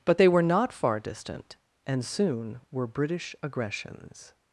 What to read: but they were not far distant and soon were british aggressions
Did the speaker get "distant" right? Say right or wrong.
right